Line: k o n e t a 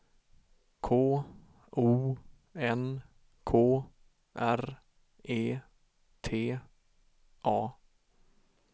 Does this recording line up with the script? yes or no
no